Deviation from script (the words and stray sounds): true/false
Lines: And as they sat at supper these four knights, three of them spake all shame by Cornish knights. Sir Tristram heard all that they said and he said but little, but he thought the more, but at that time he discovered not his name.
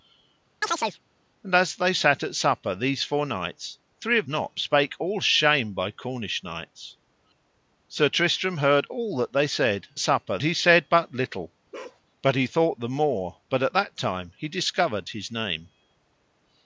true